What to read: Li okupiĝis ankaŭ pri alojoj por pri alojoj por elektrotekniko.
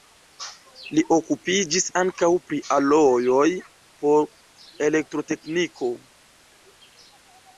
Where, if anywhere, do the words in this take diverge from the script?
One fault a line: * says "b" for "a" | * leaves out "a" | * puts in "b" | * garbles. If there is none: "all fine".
* leaves out "pri alojoj por"